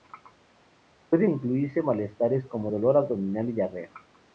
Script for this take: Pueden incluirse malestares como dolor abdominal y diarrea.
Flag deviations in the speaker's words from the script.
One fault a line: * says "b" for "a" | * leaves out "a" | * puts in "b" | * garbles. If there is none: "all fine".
all fine